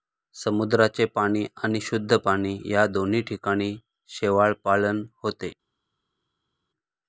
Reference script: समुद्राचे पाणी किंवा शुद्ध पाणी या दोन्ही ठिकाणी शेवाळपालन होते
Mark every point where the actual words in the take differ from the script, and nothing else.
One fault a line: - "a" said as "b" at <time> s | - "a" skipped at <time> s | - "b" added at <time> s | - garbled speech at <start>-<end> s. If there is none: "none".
- "किंवा" said as "आणि" at 1.6 s